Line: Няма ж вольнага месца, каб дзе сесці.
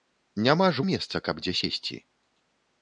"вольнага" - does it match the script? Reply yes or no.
no